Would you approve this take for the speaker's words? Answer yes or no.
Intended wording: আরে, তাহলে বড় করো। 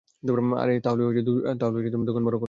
no